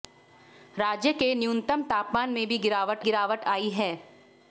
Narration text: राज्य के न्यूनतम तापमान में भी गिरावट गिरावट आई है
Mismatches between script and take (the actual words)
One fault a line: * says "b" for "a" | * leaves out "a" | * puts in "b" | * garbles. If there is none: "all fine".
all fine